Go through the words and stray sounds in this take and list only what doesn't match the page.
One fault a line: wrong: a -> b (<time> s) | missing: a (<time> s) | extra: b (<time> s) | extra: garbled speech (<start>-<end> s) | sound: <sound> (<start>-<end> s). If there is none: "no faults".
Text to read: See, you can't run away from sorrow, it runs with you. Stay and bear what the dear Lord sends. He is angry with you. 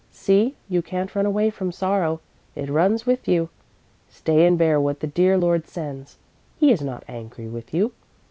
extra: not (6.8 s)